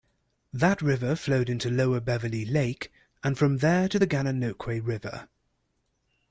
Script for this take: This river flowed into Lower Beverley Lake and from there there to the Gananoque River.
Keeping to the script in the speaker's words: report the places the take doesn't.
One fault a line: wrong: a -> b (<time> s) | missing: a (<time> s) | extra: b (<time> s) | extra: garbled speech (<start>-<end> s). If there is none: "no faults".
wrong: This -> That (0.5 s)
missing: there (3.9 s)